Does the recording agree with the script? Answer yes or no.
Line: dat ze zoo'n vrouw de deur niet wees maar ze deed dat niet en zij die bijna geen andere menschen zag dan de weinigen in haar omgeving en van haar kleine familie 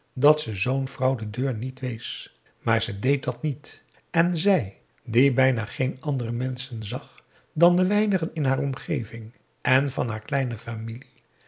yes